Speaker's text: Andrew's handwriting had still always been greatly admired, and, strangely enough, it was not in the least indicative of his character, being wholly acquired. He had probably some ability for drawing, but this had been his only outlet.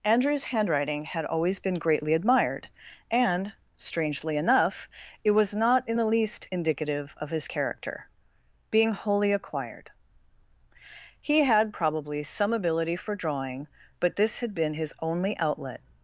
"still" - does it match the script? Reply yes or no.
no